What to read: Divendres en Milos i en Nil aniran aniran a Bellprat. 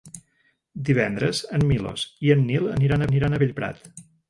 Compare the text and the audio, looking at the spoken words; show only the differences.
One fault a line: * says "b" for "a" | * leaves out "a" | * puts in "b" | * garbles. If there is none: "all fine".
all fine